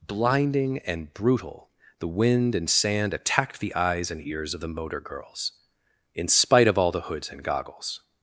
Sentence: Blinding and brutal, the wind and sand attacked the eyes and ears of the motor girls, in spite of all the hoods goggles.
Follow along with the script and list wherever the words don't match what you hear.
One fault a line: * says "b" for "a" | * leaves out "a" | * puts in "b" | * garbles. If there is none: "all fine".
* puts in "and"